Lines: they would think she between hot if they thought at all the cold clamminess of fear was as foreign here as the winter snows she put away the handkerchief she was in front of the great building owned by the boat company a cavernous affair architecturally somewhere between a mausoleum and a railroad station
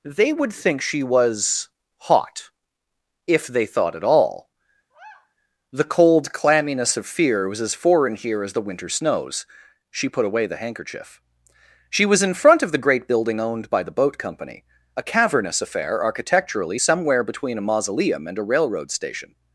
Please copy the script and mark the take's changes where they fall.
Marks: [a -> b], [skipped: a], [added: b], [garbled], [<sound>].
they would think she [between -> was] hot if they thought at all [sigh] the cold clamminess of fear was as foreign here as the winter snows she put away the handkerchief she was in front of the great building owned by the boat company a cavernous affair architecturally somewhere between a mausoleum and a railroad station